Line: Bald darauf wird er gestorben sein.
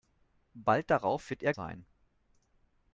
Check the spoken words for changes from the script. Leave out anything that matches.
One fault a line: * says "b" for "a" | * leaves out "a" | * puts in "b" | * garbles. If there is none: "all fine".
* leaves out "gestorben"